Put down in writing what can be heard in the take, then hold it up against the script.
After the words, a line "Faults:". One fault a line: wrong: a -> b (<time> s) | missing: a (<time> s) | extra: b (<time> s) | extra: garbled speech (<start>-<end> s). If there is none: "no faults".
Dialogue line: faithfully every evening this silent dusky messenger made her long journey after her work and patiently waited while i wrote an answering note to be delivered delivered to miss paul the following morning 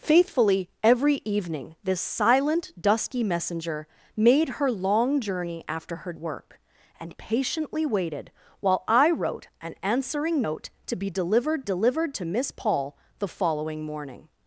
faithfully every evening this silent dusky messenger made her long journey after her work and patiently waited while i wrote an answering note to be delivered delivered to miss paul the following morning
Faults:
no faults